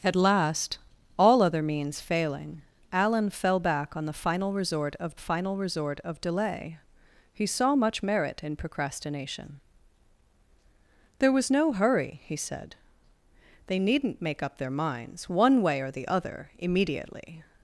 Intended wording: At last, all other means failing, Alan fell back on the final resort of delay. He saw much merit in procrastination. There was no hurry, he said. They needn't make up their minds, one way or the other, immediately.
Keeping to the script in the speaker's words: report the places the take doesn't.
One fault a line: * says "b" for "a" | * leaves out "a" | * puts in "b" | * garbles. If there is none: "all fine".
* puts in "final resort of"